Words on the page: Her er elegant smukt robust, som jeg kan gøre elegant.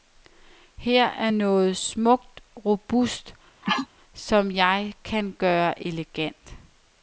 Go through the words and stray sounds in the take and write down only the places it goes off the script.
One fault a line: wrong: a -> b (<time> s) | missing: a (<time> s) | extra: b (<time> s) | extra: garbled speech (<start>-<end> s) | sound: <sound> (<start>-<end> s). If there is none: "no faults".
wrong: elegant -> noget (1.3 s)
sound: sneeze (3.6-3.9 s)